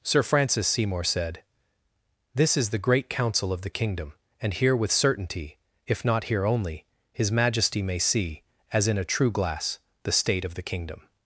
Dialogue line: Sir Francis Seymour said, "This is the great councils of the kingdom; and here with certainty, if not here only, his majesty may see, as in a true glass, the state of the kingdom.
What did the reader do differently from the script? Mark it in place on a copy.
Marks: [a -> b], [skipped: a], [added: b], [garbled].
Sir Francis Seymour said, "This is the great [councils -> council] of the kingdom; and here with certainty, if not here only, his majesty may see, as in a true glass, the state of the kingdom.